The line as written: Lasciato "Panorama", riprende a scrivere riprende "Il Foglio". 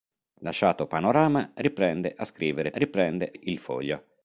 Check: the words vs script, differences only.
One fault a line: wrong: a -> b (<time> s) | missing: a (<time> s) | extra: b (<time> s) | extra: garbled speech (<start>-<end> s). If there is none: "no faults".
no faults